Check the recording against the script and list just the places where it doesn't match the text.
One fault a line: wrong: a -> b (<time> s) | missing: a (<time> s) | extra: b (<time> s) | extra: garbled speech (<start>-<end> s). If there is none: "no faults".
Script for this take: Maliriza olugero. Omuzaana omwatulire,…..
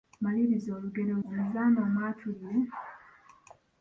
no faults